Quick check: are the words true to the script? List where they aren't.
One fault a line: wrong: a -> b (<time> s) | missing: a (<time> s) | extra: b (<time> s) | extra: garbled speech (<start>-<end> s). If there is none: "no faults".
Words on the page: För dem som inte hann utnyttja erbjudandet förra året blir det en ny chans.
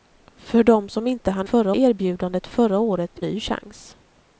wrong: utnyttja -> förra (1.4 s)
missing: blir det en (3.2 s)